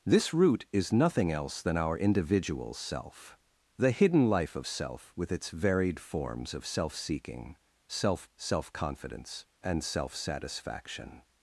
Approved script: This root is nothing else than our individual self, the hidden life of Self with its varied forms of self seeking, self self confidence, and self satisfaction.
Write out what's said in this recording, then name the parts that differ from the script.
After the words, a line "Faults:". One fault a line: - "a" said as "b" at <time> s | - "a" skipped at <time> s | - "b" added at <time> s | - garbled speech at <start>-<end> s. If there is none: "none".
This root is nothing else than our individual self, the hidden life of Self with its varied forms of self seeking, self self confidence, and self satisfaction.
Faults:
none